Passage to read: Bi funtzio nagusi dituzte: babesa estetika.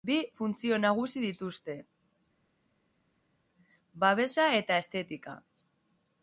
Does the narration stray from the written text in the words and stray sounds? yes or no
yes